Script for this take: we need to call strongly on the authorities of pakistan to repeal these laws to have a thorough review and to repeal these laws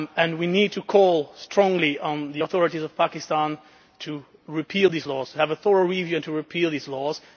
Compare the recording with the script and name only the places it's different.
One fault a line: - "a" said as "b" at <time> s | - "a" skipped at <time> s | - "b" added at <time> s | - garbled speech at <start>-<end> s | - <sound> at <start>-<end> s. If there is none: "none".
none